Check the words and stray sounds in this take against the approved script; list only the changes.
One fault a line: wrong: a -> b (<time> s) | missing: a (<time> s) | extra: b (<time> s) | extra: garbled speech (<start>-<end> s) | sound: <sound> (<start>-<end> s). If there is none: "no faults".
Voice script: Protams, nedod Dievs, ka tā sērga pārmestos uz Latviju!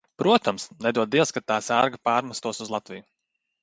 no faults